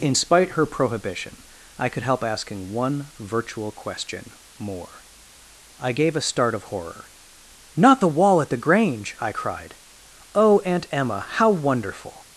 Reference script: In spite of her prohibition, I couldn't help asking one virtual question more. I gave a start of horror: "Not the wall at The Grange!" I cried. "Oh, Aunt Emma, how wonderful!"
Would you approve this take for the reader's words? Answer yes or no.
no